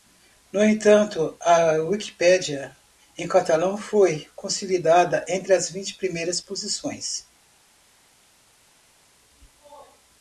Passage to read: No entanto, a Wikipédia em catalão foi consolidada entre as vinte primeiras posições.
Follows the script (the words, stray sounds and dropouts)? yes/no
yes